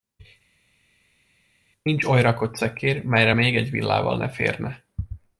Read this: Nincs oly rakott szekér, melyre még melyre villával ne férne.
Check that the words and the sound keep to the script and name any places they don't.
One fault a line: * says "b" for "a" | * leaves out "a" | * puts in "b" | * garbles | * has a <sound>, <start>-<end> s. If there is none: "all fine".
* says "egy" for "melyre"